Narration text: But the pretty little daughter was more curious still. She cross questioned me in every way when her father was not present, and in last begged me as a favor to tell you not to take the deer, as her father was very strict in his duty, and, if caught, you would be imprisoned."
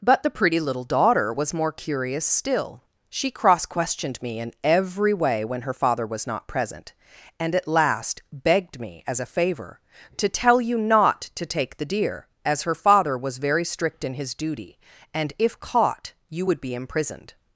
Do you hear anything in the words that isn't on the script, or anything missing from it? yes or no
yes